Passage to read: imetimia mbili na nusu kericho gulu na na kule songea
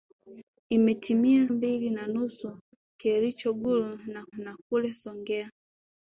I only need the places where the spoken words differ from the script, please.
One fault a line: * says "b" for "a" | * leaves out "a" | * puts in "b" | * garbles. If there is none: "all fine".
all fine